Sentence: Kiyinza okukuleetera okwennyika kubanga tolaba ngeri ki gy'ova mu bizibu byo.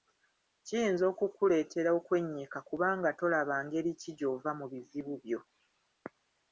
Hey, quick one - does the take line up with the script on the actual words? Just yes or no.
yes